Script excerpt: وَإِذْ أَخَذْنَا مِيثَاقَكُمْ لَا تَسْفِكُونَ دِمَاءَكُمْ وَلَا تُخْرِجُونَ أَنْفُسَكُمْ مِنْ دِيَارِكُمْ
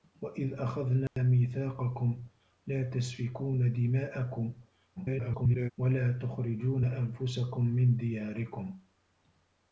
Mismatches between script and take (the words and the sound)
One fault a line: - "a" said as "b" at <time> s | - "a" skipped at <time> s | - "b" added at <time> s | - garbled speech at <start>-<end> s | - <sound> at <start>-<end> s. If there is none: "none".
- dropout at 1.1-1.2 s
- garbled speech at 5.0-5.7 s